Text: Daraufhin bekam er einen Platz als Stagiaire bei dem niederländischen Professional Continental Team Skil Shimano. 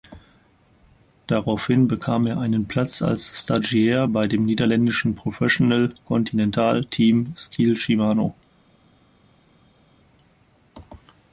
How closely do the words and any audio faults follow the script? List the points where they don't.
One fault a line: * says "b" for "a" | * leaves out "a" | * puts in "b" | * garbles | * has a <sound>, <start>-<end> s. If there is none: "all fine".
all fine